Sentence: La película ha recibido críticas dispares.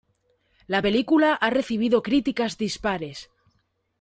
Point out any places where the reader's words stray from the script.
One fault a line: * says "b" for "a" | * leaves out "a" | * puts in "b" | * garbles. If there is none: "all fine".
all fine